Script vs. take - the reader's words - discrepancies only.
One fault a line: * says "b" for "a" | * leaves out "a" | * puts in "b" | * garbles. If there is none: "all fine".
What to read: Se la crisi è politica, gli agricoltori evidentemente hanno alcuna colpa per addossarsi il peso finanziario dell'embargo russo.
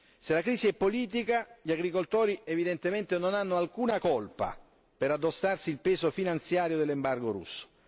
* puts in "non"